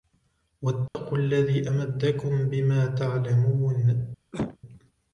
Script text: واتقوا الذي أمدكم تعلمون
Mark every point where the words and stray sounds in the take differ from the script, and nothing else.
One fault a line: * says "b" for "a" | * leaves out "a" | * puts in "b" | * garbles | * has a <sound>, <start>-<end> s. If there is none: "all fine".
* has a dropout, 0.9-0.9 s
* puts in "بما"
* has a cough, 4.3-4.6 s